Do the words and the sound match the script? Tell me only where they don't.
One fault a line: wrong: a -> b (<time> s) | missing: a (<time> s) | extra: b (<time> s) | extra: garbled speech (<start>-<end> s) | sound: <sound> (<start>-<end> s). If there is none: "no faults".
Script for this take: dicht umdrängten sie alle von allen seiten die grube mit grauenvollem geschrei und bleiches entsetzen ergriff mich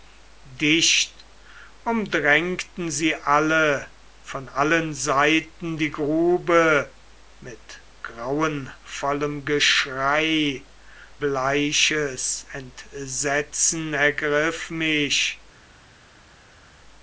missing: und (10.7 s)